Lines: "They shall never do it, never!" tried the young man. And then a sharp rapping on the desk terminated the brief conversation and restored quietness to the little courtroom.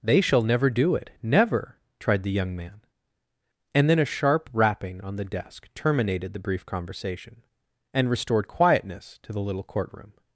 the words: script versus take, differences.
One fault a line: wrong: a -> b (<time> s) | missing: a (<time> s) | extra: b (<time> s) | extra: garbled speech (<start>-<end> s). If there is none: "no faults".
no faults